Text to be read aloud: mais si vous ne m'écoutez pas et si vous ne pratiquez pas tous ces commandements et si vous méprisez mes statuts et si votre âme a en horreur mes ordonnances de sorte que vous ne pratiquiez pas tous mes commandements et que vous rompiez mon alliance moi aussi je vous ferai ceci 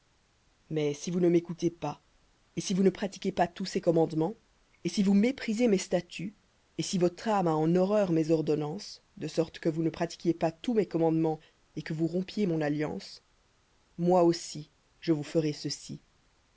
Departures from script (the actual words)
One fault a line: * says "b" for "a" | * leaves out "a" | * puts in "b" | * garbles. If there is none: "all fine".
all fine